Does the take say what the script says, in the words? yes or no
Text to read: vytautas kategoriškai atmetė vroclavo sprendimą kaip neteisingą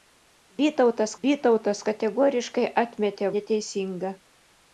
no